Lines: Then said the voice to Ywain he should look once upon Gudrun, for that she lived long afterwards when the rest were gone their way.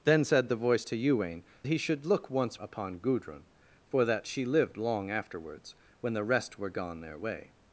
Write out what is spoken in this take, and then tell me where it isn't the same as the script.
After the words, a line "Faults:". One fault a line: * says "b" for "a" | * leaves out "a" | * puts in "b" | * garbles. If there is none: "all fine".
Then said the voice to Ywain he should look once upon Gudrun, for that she lived long afterwards when the rest were gone their way.
Faults:
all fine